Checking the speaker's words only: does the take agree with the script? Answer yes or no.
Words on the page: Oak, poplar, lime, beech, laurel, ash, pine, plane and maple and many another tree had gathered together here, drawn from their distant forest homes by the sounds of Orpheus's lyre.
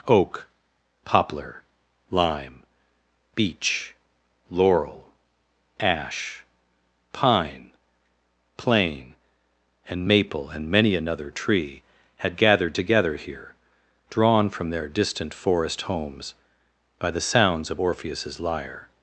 yes